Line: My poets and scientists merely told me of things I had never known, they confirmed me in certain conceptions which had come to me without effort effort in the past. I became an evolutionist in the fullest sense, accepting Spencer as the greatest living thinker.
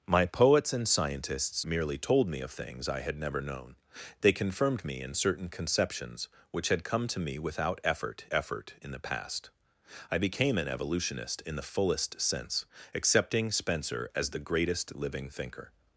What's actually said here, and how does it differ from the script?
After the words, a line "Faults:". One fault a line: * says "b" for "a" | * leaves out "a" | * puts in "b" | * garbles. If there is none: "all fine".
My poets and scientists merely told me of things I had never known, they confirmed me in certain conceptions which had come to me without effort effort in the past. I became an evolutionist in the fullest sense, accepting Spencer as the greatest living thinker.
Faults:
all fine